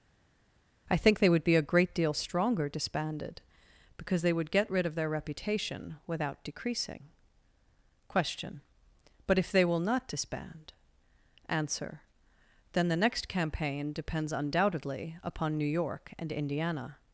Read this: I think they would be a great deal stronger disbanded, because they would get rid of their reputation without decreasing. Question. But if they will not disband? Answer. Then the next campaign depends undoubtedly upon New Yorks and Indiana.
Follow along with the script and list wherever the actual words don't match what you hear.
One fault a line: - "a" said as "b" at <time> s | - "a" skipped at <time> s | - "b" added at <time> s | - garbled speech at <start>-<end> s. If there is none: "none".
- "Yorks" said as "York" at 15.7 s